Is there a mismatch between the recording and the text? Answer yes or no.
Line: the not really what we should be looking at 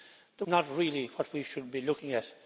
no